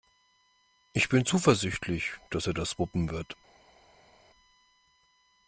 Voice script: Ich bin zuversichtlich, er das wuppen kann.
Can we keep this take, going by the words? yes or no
no